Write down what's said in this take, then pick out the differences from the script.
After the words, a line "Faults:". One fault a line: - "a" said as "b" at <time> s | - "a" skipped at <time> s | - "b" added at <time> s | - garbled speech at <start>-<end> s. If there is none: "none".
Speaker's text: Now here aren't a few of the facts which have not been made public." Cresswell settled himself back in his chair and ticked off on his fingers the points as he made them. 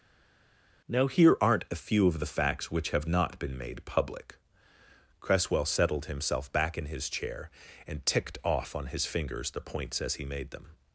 Now here aren't a few of the facts which have not been made public." Cresswell settled himself back in his chair and ticked off on his fingers the points as he made them.
Faults:
none